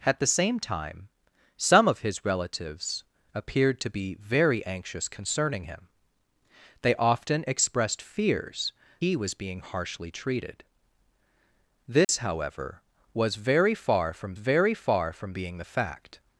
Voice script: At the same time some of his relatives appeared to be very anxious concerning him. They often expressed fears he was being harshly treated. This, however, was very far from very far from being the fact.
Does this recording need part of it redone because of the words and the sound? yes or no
yes